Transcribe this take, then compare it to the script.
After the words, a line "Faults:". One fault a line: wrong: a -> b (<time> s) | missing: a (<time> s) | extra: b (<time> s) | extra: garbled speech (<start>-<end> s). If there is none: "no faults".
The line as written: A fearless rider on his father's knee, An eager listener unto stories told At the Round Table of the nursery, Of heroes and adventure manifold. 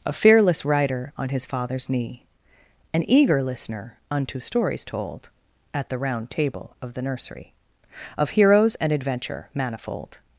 A fearless rider on his father's knee, An eager listener unto stories told At the Round Table of the nursery, Of heroes and adventure manifold.
Faults:
no faults